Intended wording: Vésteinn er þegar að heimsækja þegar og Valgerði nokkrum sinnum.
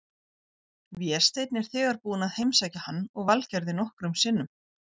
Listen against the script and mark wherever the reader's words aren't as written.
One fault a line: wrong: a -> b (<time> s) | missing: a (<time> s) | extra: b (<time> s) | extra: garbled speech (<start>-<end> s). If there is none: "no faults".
extra: búinn (2.1 s)
wrong: þegar -> hann (2.9 s)